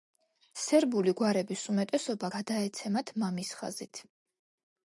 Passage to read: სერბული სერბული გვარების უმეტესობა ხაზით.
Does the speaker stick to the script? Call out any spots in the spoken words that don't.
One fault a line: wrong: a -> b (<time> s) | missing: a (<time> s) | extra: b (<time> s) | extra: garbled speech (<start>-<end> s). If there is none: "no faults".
missing: სერბული (1.1 s)
extra: გადაეცემათ მამის (2.4 s)